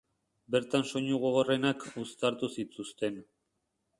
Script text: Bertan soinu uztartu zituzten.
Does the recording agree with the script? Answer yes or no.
no